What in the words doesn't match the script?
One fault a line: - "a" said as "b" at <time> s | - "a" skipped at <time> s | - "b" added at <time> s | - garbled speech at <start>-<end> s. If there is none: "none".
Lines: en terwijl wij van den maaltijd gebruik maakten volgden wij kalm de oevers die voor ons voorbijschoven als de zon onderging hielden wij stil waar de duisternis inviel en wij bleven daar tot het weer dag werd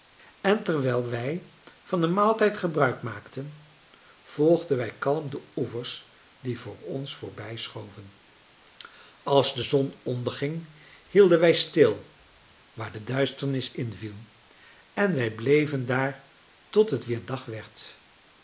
none